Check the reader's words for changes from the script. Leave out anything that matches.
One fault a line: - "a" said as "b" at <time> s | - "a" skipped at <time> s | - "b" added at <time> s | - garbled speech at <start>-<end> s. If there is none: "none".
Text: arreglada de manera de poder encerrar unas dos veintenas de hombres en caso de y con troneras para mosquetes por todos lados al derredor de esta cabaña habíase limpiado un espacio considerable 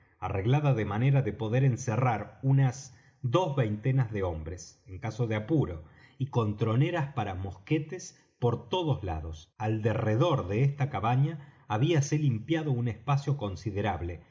- "apuro" added at 5.3 s